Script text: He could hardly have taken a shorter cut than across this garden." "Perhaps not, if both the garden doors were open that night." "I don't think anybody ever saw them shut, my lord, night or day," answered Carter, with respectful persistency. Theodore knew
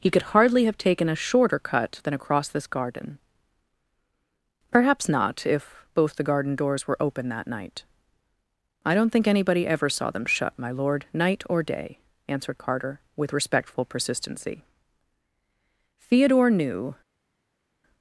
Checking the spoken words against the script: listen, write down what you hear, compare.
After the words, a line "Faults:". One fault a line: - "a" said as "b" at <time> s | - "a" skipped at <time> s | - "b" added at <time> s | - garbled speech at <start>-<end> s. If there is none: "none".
He could hardly have taken a shorter cut than across this garden." "Perhaps not, if both the garden doors were open that night." "I don't think anybody ever saw them shut, my lord, night or day," answered Carter, with respectful persistency. Theodore knew
Faults:
none